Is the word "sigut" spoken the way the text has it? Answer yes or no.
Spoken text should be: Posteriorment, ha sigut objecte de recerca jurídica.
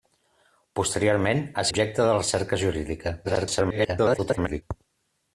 no